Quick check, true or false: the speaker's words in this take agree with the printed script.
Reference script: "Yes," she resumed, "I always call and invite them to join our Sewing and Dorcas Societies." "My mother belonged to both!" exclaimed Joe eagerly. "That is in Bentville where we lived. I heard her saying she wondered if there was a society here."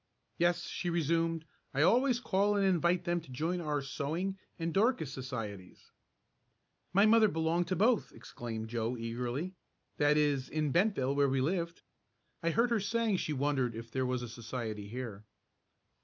true